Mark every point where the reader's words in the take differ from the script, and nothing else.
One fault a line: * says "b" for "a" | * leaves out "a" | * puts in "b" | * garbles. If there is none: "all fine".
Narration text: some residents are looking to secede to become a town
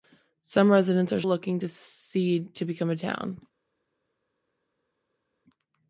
all fine